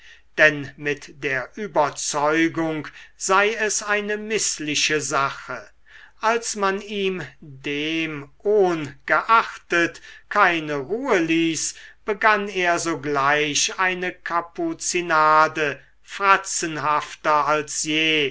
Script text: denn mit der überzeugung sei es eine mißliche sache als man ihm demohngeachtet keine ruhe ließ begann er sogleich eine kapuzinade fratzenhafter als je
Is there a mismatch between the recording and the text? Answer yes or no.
no